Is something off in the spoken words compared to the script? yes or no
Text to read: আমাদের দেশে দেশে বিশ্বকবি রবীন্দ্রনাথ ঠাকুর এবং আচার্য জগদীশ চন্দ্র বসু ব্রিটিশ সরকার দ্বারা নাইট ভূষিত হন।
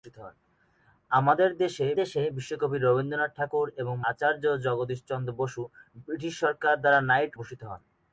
no